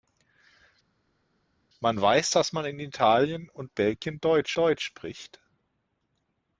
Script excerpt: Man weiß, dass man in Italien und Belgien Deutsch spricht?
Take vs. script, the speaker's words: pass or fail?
fail